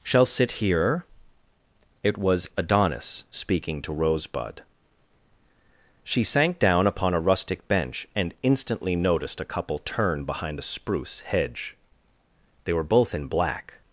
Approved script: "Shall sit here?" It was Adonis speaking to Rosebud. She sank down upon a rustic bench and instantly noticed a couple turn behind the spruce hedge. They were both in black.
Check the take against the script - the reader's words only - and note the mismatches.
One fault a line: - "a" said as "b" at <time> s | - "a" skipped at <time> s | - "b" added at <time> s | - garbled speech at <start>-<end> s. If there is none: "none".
none